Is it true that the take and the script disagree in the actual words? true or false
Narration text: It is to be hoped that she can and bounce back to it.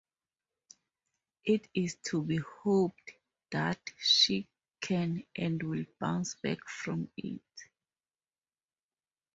true